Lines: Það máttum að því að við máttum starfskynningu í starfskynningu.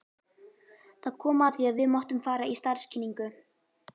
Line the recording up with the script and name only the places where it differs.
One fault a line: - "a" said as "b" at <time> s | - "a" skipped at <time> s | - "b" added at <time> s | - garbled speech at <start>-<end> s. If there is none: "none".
- "máttum" said as "kom" at 1.2 s
- "starfskynningu" said as "fara" at 2.3 s